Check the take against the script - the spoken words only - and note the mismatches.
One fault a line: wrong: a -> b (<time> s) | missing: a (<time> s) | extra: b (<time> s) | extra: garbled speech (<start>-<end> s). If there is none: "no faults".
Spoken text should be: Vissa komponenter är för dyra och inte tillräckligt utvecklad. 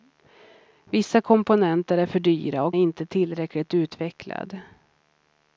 no faults